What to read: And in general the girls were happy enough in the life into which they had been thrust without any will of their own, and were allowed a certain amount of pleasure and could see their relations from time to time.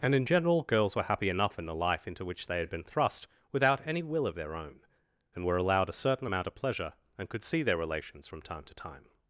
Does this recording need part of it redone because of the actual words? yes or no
yes